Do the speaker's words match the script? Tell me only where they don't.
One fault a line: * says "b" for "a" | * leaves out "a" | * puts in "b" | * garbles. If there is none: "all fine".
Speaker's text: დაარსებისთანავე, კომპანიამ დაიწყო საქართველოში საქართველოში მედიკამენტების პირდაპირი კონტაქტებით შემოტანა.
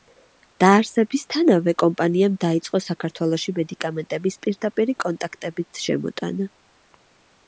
* leaves out "საქართველოში"